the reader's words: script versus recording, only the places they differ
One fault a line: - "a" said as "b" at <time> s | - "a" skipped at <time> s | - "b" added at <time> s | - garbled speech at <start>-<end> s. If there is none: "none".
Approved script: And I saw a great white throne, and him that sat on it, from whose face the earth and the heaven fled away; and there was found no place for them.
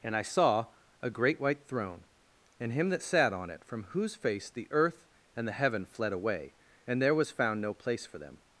none